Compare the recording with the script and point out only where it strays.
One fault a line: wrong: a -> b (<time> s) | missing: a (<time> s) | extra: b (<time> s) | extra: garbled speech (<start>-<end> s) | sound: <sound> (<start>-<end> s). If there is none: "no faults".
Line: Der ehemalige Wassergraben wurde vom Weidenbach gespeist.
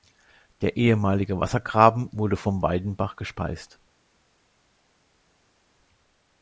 no faults